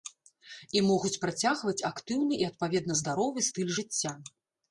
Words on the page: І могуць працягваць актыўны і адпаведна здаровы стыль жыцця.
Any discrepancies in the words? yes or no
no